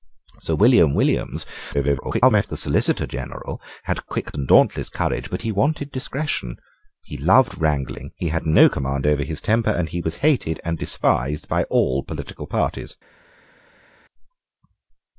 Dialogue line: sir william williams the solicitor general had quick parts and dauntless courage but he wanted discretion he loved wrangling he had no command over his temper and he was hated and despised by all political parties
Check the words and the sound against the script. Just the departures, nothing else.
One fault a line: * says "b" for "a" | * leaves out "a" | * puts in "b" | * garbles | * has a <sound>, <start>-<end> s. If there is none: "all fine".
* garbles
* leaves out "parts"